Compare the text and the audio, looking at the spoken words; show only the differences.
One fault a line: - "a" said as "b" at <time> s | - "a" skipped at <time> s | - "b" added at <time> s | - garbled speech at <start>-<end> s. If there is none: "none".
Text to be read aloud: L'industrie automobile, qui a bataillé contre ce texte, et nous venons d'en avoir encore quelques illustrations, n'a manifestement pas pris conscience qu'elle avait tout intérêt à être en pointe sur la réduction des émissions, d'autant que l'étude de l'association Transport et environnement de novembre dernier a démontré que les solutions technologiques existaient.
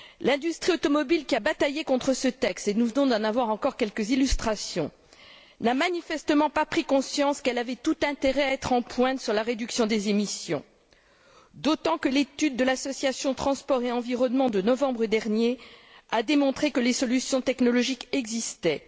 none